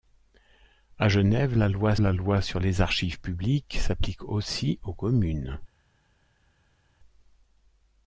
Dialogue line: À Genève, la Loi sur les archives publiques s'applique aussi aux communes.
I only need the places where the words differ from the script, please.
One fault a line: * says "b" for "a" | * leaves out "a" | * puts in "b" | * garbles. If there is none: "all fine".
* puts in "la Loi"